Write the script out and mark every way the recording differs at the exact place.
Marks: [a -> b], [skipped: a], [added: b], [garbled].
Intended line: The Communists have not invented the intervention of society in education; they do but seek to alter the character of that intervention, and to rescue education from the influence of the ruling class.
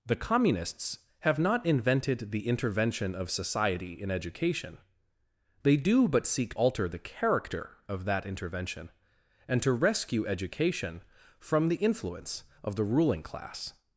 The Communists have not invented the intervention of society in education; they do but seek [skipped: to] alter the character of that intervention, and to rescue education from the influence of the ruling class.